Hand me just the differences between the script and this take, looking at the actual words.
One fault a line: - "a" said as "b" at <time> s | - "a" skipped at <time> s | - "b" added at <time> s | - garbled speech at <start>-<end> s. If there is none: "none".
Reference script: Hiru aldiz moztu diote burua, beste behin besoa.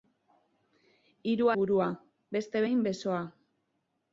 - "aldiz moztu diote" skipped at 1.5 s